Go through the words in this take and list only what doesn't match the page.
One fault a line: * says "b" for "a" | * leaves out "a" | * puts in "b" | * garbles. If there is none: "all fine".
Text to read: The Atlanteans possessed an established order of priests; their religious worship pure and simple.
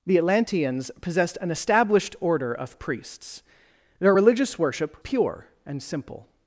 all fine